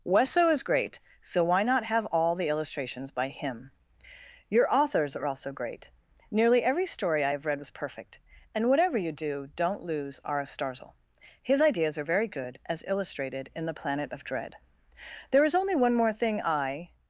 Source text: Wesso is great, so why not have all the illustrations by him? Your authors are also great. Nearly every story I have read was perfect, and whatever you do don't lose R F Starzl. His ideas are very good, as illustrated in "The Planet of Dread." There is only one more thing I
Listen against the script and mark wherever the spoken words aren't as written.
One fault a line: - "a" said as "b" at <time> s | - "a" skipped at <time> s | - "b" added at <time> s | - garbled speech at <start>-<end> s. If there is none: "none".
none